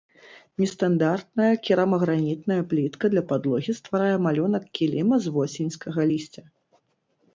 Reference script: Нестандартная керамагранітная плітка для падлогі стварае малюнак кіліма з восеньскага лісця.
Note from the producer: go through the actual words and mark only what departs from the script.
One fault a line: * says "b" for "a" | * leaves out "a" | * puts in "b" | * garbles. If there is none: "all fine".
all fine